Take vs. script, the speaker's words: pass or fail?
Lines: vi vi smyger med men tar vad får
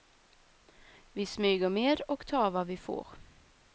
fail